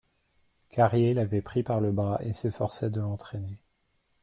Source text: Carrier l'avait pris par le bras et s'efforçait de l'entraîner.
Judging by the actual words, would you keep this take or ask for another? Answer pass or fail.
pass